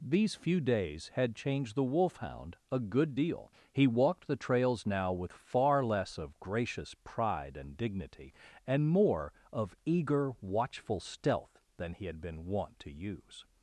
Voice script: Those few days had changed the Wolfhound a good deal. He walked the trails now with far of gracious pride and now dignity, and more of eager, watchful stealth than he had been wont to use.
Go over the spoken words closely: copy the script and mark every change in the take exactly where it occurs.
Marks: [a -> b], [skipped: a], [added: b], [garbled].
[Those -> These] few days had changed the Wolfhound a good deal. He walked the trails now with far [added: less] of gracious pride and [skipped: now] dignity, and more of eager, watchful stealth than he had been wont to use.